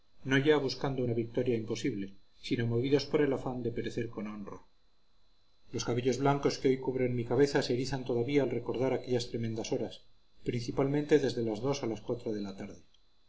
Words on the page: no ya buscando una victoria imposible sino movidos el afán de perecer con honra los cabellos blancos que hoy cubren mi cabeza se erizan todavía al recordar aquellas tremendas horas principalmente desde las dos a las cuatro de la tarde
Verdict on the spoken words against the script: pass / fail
fail